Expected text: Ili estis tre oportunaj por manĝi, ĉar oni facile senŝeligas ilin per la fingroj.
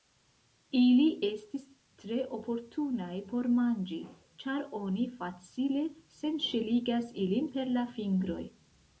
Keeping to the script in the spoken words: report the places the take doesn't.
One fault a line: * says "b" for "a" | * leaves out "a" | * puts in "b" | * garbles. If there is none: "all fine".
all fine